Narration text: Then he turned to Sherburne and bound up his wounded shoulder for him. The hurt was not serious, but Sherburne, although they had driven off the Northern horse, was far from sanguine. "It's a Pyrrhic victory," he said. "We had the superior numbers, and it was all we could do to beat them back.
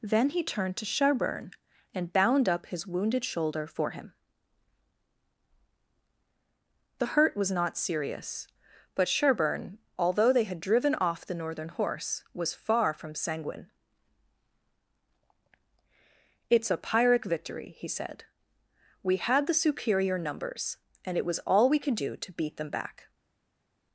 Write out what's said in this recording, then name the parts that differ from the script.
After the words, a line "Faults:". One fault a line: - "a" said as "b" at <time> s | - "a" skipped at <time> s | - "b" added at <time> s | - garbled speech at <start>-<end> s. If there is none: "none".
Then he turned to Sherburne and bound up his wounded shoulder for him. The hurt was not serious, but Sherburne, although they had driven off the Northern horse, was far from sanguine. "It's a Pyrrhic victory," he said. "We had the superior numbers, and it was all we could do to beat them back.
Faults:
none